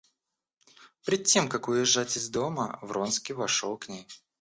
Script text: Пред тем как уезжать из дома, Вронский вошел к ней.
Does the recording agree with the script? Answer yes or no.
yes